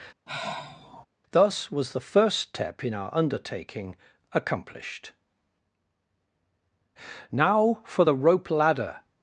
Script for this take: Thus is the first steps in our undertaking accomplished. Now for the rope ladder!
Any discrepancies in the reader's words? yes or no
yes